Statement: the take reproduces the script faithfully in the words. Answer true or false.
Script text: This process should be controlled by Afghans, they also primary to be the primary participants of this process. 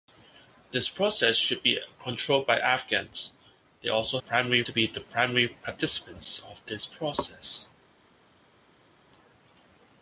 true